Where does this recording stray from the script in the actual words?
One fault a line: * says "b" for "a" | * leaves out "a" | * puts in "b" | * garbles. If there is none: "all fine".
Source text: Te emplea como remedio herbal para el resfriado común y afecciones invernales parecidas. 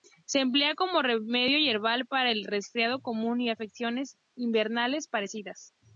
* says "Se" for "Te"